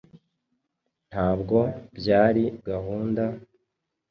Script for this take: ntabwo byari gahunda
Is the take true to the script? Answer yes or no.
yes